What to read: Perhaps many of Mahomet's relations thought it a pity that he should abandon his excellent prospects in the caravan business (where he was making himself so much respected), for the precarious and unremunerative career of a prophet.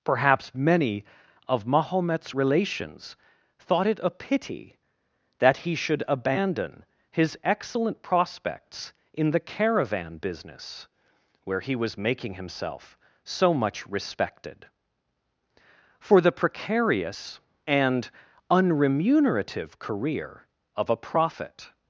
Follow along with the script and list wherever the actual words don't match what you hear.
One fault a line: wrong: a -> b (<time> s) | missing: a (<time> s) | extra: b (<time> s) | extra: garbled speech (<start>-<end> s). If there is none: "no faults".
no faults